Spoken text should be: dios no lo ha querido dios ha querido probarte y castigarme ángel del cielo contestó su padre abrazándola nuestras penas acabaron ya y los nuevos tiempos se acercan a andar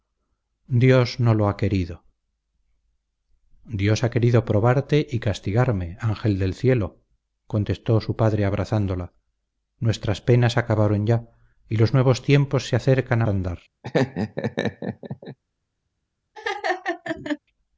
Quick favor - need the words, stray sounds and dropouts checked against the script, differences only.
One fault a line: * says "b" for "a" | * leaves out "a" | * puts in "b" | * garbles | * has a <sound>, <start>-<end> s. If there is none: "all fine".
* has a laugh, 13.8-15.4 s
* has a laugh, 16.3-17.4 s